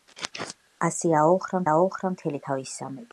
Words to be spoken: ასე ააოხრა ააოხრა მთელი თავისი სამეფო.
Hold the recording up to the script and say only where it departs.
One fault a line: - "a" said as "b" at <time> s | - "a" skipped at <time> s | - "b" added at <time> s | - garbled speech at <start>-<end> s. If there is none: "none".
none